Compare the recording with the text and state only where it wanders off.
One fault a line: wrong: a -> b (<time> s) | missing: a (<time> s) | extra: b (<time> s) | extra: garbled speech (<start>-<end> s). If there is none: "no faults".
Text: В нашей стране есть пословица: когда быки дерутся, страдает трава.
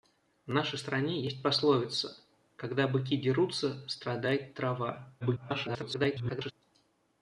extra: garbled speech (5.2-6.5 s)